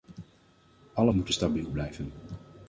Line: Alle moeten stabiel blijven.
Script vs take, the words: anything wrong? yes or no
no